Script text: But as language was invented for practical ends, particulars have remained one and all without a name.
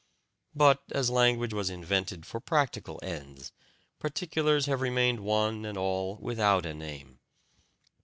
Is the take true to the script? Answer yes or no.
yes